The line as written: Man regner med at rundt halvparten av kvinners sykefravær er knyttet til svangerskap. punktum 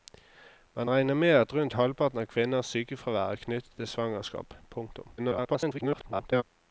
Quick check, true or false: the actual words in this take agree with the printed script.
false